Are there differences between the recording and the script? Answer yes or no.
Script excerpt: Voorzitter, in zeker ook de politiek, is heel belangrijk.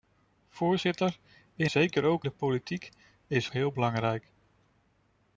no